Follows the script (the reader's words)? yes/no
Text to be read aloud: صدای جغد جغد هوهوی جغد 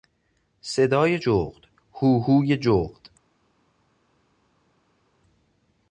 no